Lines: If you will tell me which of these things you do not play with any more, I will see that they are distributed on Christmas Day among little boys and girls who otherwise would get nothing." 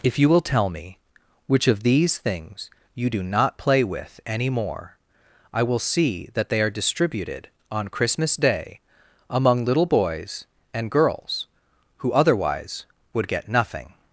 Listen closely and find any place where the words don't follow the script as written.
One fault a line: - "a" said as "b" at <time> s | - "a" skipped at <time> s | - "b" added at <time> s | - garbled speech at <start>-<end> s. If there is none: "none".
none